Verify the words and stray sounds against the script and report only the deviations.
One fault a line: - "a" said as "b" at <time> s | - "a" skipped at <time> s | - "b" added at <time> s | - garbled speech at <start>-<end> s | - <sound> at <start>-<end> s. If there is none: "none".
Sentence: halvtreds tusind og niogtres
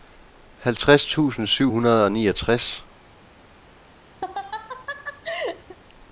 - "syv hundrede" added at 1.5 s
- laugh at 4.2-5.8 s